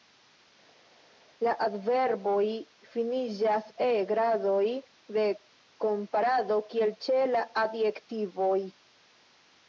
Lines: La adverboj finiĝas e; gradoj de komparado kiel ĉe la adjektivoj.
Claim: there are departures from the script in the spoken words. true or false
false